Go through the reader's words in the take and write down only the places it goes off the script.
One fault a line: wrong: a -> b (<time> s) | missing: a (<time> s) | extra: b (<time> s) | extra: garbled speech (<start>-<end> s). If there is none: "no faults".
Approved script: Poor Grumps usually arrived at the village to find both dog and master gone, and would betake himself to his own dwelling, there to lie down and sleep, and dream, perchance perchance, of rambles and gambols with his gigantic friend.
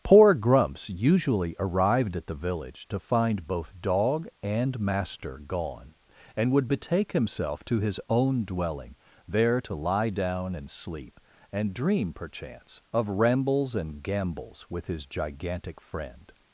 missing: perchance (12.8 s)